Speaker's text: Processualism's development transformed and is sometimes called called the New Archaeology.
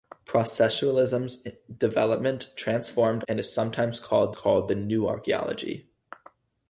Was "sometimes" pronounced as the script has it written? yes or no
yes